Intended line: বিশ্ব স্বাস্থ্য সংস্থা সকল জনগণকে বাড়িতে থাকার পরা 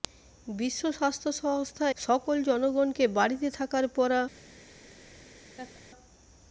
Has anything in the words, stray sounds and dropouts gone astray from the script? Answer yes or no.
yes